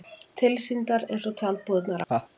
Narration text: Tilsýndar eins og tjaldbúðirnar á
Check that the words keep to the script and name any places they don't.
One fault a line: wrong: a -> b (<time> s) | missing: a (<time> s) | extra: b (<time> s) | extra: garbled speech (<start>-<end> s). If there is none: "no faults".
no faults